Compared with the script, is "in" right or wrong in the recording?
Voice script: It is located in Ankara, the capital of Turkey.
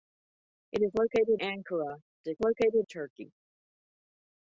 wrong